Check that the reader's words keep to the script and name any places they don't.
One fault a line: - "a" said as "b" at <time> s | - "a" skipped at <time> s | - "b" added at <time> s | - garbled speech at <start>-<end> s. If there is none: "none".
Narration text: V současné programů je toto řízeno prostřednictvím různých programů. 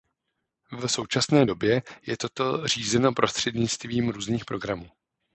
- "programů" said as "době" at 1.4 s